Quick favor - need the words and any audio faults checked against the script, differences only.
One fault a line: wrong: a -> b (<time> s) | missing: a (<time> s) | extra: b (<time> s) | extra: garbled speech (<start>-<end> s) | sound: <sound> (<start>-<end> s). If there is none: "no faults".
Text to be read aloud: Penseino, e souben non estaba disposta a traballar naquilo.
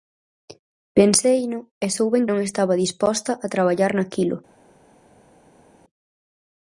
no faults